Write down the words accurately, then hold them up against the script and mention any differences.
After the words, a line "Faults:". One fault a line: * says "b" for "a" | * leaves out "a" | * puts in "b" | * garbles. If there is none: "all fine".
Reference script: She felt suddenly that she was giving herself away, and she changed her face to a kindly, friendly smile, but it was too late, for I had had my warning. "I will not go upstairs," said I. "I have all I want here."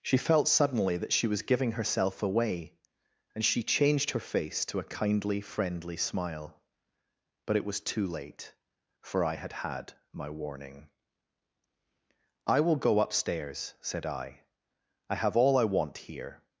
She felt suddenly that she was giving herself away, and she changed her face to a kindly, friendly smile, but it was too late, for I had had my warning. "I will go upstairs," said I. "I have all I want here."
Faults:
* leaves out "not"